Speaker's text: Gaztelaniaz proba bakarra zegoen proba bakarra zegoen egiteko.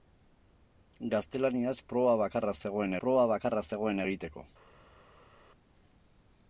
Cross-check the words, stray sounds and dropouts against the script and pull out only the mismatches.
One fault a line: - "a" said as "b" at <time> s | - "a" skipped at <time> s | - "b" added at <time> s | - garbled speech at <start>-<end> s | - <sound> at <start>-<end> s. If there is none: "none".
none